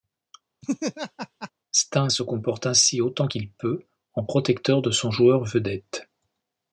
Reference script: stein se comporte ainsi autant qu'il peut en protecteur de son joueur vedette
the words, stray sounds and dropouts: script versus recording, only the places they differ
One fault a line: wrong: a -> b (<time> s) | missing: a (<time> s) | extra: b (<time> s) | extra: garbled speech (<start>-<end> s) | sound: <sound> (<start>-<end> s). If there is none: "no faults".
sound: laugh (0.6-1.5 s)